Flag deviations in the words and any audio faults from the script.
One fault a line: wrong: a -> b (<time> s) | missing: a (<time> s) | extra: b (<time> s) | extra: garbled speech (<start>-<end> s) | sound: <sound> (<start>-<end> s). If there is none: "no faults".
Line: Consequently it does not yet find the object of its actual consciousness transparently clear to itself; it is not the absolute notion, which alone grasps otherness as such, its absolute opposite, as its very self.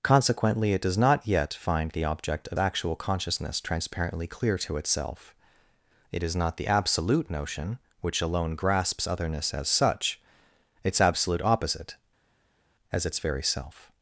missing: its (2.6 s)